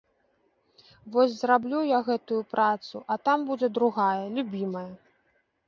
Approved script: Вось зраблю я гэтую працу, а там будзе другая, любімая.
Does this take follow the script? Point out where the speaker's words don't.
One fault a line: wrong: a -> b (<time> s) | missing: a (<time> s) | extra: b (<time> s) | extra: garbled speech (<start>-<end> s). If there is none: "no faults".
no faults